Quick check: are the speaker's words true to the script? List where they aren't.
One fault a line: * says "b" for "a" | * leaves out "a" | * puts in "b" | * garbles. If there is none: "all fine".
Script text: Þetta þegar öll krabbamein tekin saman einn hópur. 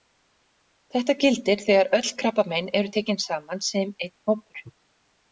* puts in "gildir"
* puts in "eru"
* puts in "sem"